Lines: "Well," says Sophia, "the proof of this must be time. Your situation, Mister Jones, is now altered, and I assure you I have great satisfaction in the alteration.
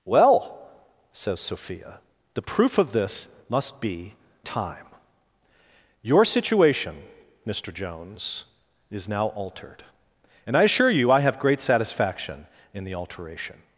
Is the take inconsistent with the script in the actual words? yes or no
no